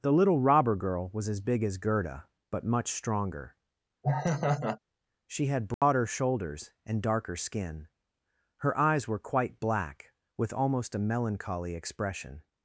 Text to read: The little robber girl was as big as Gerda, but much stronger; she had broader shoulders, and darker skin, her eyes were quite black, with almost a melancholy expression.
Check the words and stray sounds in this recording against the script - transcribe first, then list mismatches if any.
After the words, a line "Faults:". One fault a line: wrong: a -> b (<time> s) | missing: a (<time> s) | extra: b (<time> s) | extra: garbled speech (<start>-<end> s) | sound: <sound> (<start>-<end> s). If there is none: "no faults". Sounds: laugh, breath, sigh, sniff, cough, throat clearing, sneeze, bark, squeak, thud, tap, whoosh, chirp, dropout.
The little robber girl was as big as Gerda, but much stronger; she had broader shoulders, and darker skin, her eyes were quite black, with almost a melancholy expression.
Faults:
sound: laugh (4.0-4.8 s)
sound: dropout (5.7-5.8 s)